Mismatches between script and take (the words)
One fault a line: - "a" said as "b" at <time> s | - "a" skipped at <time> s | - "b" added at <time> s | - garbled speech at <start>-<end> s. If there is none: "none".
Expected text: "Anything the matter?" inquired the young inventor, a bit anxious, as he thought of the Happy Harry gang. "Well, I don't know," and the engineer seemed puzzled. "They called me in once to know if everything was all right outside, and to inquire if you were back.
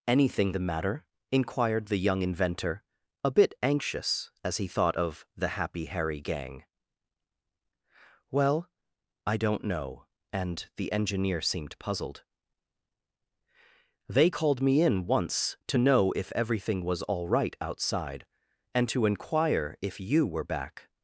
none